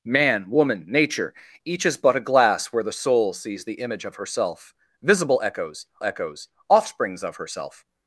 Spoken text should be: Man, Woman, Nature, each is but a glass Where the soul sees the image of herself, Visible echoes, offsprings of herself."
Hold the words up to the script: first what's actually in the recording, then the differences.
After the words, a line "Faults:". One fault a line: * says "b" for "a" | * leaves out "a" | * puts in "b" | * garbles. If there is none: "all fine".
Man, Woman, Nature, each is but a glass Where the soul sees the image of herself, Visible echoes echoes, offsprings of herself."
Faults:
* puts in "echoes"